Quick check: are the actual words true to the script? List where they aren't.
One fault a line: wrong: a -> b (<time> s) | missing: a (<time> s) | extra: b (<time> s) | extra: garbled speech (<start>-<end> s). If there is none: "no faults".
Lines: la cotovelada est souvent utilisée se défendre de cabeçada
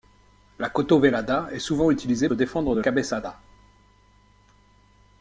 no faults